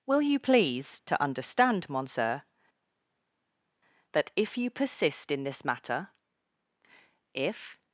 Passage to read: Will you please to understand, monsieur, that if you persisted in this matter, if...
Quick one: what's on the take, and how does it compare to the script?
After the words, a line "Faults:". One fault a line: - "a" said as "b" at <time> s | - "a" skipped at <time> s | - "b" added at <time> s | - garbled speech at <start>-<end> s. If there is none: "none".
Will you please to understand, monsieur, that if you persist in this matter, if...
Faults:
- "persisted" said as "persist" at 4.7 s